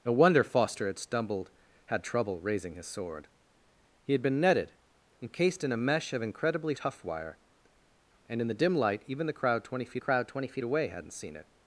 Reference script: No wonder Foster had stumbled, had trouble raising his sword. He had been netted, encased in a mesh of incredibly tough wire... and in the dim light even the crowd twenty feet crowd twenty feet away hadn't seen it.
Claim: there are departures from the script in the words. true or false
false